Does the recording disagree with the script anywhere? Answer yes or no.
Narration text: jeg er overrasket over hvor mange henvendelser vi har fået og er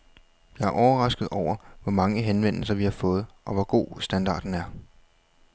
yes